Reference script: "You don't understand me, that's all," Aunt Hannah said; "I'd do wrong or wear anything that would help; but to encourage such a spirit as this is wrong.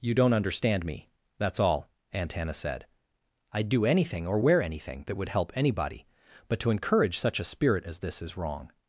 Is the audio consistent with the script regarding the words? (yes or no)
no